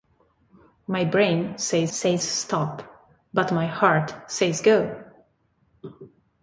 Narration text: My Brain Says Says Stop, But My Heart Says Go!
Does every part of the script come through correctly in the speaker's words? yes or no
yes